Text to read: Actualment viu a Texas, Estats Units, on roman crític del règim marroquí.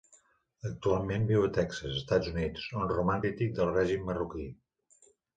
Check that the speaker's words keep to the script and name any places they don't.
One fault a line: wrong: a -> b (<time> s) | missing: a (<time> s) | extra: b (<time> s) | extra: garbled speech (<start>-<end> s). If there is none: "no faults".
no faults